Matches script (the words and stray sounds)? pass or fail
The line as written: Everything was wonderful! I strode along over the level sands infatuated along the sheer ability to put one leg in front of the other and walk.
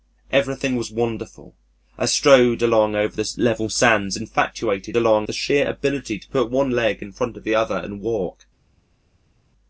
pass